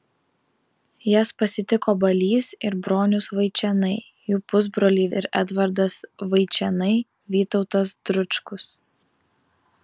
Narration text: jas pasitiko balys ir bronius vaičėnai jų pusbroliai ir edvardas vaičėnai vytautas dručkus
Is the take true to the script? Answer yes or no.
yes